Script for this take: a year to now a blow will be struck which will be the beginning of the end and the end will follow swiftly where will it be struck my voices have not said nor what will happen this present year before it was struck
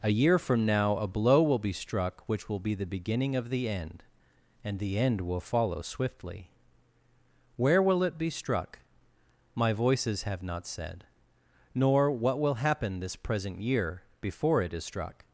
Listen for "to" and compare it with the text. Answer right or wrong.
wrong